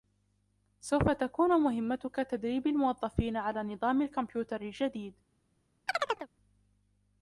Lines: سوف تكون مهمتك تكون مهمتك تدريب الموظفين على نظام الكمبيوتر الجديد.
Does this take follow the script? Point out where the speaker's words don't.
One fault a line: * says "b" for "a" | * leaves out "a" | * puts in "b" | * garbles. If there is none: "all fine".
* leaves out "تكون مهمتك"